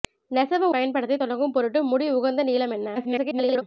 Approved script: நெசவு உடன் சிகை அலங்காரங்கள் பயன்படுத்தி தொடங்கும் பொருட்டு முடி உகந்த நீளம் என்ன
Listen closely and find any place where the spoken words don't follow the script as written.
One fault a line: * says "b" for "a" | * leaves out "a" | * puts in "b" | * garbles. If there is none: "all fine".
* leaves out "உடன் சிகை அலங்காரங்கள்"
* garbles